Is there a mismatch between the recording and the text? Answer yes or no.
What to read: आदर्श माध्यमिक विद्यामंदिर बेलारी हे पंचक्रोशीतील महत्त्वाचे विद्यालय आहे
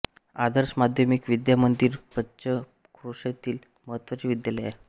yes